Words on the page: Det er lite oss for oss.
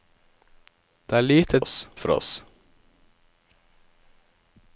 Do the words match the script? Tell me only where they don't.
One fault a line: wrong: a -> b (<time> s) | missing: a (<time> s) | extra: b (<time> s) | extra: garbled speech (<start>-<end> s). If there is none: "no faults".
no faults